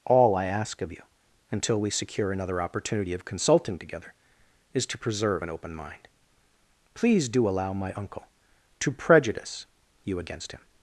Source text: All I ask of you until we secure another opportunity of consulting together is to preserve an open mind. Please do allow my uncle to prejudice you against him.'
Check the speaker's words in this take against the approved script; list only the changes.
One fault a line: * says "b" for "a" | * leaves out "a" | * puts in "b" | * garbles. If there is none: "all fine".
all fine